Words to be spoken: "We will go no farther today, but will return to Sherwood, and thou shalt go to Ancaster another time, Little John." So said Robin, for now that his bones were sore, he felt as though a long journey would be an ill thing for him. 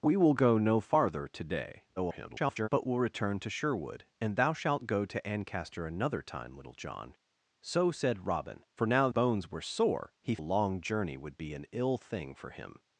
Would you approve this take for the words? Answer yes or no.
no